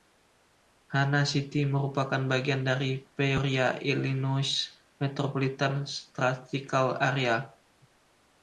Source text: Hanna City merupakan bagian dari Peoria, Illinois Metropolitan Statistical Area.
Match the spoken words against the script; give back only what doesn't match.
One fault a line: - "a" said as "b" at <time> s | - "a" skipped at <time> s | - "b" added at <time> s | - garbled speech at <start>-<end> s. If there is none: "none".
none